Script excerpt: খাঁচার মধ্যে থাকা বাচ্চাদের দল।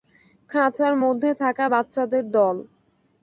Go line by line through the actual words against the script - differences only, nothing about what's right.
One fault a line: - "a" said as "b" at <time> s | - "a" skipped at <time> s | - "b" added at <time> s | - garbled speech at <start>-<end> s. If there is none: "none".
none